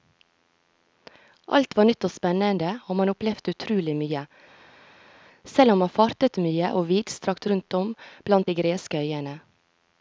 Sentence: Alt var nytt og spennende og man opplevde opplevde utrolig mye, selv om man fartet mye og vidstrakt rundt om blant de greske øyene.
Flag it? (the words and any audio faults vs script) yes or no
yes